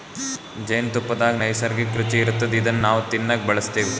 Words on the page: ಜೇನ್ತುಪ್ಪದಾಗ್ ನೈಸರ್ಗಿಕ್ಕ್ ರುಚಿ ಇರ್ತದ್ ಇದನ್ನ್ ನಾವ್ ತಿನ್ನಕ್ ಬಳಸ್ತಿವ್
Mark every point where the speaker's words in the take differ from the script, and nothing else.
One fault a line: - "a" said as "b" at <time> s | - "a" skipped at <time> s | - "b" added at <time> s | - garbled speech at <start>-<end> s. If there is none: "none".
none